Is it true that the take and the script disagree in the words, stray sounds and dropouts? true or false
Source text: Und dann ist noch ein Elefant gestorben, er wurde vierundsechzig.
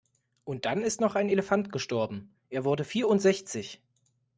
false